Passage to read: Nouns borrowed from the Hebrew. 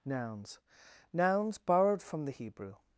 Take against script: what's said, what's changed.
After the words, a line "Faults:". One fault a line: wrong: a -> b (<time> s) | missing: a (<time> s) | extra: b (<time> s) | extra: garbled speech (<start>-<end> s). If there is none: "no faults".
Nouns nouns borrowed from the Hebrew.
Faults:
extra: nouns (1.1 s)